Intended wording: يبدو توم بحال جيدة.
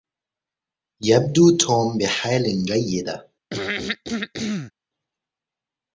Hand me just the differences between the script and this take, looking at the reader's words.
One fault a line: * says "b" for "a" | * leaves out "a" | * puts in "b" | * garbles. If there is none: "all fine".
all fine